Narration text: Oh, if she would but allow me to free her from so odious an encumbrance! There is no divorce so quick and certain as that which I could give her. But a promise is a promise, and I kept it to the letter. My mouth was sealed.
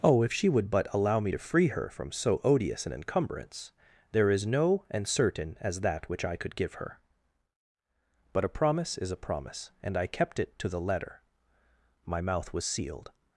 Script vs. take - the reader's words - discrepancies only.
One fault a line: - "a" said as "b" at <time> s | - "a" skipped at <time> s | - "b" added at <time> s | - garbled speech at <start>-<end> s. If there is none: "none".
- "divorce so quick" skipped at 4.8 s